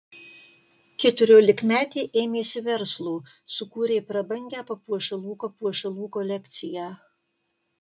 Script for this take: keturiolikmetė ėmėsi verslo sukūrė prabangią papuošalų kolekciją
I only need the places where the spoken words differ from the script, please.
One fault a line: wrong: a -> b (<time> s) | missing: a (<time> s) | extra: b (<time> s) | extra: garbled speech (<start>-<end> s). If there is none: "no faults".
extra: papuošalų (5.5 s)